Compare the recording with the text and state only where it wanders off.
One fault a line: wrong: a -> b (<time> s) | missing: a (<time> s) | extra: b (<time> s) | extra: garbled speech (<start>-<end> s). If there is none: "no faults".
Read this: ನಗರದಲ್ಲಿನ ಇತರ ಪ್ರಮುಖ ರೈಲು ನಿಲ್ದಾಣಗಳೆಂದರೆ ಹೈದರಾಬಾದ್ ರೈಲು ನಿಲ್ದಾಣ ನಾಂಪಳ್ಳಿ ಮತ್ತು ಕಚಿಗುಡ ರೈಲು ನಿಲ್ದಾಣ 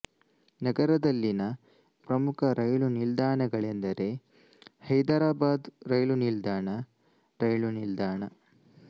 missing: ಇತರ (1.4 s)
missing: ನಾಂಪಳ್ಳಿ ಮತ್ತು ಕಚಿಗುಡ (6.7 s)